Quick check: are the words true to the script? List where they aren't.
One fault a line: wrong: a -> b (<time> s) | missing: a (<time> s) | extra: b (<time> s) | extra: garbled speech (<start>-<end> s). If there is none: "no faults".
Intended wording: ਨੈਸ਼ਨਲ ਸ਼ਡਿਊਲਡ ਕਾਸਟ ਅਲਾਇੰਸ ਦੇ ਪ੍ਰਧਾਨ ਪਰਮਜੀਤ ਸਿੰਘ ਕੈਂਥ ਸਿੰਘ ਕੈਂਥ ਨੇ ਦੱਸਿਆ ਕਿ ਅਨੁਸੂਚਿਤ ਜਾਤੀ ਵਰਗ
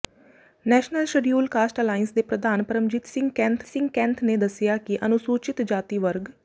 no faults